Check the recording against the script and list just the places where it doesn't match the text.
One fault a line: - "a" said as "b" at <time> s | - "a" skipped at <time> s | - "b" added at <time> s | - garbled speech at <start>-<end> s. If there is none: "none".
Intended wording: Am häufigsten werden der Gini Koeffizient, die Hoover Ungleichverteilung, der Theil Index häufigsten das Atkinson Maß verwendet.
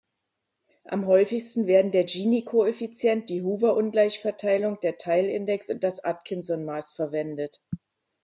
- "häufigsten" said as "und" at 5.7 s